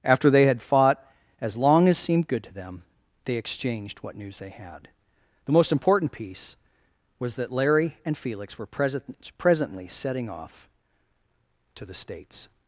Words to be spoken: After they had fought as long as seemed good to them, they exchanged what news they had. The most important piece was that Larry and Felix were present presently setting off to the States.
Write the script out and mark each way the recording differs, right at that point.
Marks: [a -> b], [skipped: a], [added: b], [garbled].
After they had fought as long as seemed good to them, they exchanged what news they had. The most important piece was that Larry and Felix were present presently setting off to the States.